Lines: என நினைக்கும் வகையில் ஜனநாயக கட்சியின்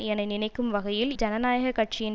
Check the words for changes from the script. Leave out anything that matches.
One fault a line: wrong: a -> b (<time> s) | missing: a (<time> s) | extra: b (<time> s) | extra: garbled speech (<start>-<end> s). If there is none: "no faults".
no faults